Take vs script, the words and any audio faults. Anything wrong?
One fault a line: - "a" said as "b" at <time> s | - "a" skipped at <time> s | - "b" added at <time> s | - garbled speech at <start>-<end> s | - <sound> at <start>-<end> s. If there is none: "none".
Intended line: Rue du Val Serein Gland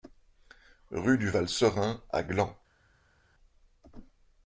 - "à" added at 2.1 s